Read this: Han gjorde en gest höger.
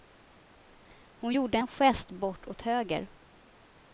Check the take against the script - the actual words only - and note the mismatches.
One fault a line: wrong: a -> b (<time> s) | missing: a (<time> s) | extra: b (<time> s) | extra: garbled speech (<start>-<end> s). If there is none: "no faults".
wrong: Han -> Hon (1.1 s)
extra: bort åt (2.1 s)